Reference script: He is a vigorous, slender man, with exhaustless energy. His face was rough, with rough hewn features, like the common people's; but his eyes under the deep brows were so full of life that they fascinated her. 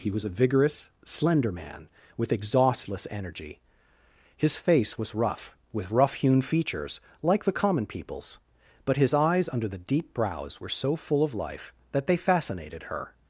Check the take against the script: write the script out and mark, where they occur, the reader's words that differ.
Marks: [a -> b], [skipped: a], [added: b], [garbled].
He [is -> was] a vigorous, slender man, with exhaustless energy. His face was rough, with rough hewn features, like the common people's; but his eyes under the deep brows were so full of life that they fascinated her.